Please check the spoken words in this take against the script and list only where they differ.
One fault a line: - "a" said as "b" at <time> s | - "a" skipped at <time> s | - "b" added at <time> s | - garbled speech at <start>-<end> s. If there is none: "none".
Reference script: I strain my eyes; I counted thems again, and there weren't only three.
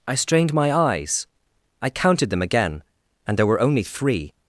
- "strain" said as "strained" at 0.1 s
- "thems" said as "them" at 2.3 s
- "weren't" said as "were" at 3.5 s